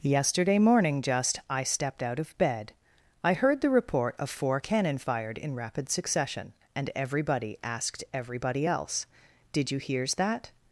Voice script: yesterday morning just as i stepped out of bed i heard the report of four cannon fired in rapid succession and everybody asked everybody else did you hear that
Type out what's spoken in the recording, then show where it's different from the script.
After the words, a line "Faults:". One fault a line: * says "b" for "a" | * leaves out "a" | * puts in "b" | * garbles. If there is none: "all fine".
yesterday morning just i stepped out of bed i heard the report of four cannon fired in rapid succession and everybody asked everybody else did you hears that
Faults:
* leaves out "as"
* says "hears" for "hear"